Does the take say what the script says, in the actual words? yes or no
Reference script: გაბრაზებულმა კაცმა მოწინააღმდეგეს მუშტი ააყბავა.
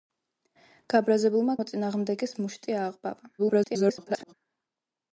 no